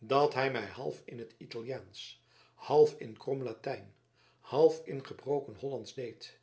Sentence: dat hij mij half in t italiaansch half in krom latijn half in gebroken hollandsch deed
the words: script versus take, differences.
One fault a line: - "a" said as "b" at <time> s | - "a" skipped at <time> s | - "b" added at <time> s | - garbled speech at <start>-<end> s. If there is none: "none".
none